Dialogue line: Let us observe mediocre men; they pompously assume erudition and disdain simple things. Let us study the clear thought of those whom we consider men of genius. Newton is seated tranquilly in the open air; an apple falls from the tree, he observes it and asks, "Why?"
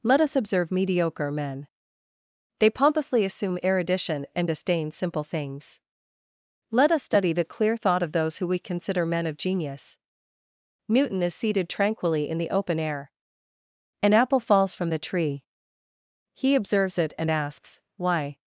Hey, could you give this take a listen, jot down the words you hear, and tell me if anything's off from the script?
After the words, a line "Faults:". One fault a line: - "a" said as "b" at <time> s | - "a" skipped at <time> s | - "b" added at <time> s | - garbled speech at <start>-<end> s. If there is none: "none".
Let us observe mediocre men; they pompously assume erudition and disdain simple things. Let us study the clear thought of those who we consider men of genius. Newton is seated tranquilly in the open air; an apple falls from the tree, he observes it and asks, "Why?"
Faults:
- "whom" said as "who" at 8.4 s